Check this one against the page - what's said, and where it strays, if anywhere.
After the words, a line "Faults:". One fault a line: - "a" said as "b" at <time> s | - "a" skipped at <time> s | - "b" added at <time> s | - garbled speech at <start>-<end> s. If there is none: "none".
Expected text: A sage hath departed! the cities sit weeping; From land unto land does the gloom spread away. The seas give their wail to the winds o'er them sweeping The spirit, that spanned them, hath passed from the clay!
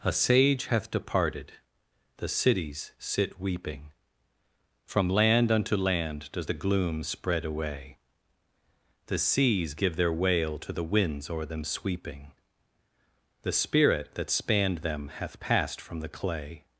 A sage hath departed! the cities sit weeping; From land unto land does the gloom spread away. The seas give their wail to the winds o'er them sweeping The spirit, that spanned them, hath passed from the clay!
Faults:
none